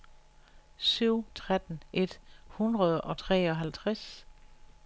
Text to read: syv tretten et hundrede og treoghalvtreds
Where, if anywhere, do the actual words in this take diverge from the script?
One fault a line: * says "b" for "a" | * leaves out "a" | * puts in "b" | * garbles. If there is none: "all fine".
all fine